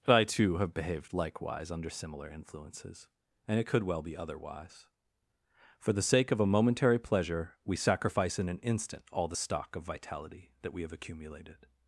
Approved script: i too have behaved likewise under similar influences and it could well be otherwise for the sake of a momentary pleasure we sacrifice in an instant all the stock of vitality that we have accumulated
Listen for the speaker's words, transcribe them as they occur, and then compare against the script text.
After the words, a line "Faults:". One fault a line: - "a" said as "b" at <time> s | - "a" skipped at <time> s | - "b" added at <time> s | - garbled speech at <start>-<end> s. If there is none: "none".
i too have behaved likewise under similar influences and it could well be otherwise for the sake of a momentary pleasure we sacrifice in an instant all the stock of vitality that we have accumulated
Faults:
none